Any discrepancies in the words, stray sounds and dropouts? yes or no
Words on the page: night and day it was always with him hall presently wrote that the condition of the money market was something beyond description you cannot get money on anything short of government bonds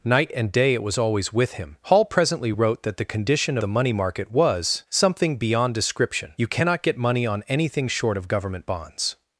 yes